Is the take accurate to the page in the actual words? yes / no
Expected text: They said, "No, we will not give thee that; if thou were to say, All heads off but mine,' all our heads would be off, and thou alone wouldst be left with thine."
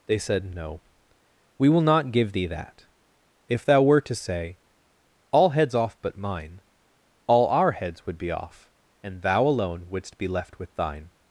yes